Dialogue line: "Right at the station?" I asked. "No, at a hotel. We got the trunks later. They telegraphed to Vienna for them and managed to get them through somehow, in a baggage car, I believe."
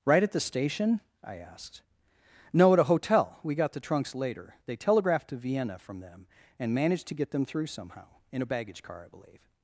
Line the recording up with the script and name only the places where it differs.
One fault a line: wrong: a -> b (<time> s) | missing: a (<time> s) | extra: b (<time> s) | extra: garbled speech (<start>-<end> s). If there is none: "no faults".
wrong: for -> from (5.8 s)